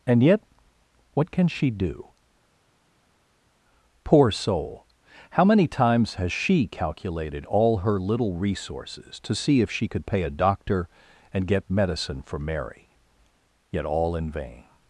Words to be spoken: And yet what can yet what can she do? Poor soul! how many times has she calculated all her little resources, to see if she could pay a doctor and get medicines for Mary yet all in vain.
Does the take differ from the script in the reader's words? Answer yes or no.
yes